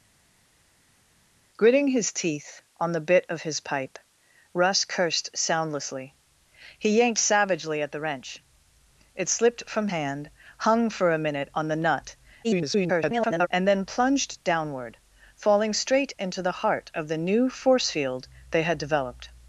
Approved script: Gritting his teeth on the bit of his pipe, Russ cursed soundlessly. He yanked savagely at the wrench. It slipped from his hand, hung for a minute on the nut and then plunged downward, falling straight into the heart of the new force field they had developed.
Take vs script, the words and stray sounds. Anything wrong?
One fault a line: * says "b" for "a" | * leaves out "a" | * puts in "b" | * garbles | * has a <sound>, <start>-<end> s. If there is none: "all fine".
* leaves out "his"
* garbles